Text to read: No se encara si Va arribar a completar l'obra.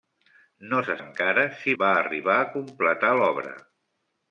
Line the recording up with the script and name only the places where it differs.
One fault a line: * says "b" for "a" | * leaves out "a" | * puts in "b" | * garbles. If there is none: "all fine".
all fine